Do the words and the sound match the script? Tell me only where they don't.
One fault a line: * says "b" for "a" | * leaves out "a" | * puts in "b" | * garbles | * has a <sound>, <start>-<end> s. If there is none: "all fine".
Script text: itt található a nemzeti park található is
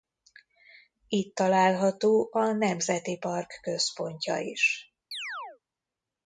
* says "központja" for "található"
* has a chirp, 5.1-5.6 s